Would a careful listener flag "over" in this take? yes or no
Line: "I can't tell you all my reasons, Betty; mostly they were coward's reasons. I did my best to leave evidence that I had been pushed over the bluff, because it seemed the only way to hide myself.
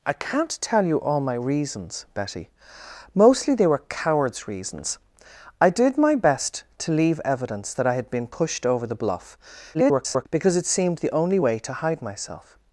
no